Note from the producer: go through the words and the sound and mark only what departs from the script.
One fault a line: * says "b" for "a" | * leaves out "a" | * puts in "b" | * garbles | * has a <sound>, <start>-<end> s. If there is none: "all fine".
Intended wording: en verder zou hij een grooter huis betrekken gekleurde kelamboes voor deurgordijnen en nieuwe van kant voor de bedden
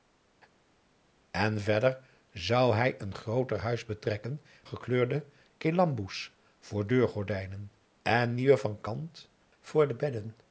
all fine